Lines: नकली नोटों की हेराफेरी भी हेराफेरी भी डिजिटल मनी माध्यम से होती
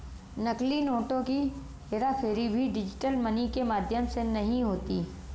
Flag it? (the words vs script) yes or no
yes